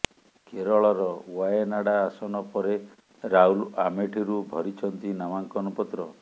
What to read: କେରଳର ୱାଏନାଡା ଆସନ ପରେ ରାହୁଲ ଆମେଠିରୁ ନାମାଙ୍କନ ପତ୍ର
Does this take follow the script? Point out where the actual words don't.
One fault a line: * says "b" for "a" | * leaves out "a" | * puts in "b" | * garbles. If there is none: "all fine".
* puts in "ଭରିଛନ୍ତି"